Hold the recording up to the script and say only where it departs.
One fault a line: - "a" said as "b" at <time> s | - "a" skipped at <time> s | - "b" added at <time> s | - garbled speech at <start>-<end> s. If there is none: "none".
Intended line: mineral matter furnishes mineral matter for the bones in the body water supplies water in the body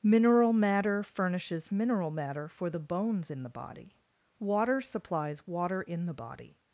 none